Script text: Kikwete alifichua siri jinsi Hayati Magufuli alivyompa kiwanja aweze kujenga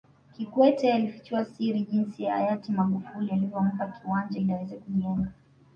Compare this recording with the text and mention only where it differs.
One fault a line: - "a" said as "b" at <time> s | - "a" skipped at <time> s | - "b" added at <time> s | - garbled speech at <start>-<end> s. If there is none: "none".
- "ili" added at 4.4 s